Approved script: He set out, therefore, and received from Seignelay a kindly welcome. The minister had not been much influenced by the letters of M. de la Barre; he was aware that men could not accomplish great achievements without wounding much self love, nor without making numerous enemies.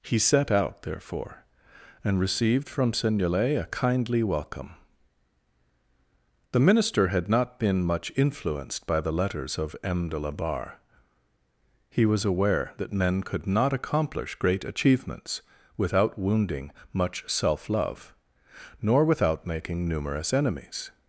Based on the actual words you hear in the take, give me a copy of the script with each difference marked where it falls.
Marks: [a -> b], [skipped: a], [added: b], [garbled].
He set out, therefore, and received from Seignelay a kindly welcome. The minister had not been much influenced by the letters of M. de la Barre; he was aware that men could not accomplish great achievements without wounding much self love, nor without making numerous enemies.